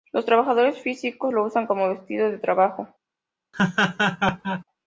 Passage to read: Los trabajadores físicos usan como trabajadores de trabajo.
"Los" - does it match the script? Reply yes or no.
yes